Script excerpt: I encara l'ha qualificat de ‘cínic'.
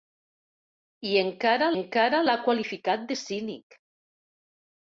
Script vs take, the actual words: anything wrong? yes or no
yes